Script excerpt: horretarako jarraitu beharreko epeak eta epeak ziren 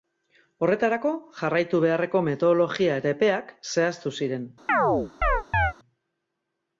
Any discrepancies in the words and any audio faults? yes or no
yes